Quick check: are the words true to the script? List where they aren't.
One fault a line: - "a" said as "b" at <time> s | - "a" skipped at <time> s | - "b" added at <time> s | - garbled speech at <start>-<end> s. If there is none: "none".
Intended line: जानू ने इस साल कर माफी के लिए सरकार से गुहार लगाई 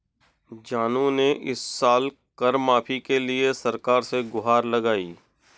none